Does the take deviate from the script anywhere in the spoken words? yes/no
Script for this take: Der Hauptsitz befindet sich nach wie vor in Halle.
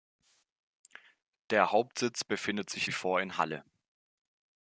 yes